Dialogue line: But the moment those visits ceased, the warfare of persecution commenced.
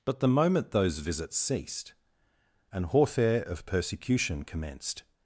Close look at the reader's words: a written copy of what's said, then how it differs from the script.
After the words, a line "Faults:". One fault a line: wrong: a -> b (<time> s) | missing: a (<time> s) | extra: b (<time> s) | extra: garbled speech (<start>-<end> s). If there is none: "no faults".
But the moment those visits ceased, an warfare of persecution commenced.
Faults:
wrong: the -> an (2.7 s)